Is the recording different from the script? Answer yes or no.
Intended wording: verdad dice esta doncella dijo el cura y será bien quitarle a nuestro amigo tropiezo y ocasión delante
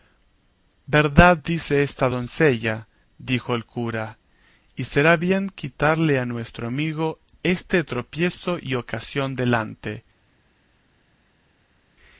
yes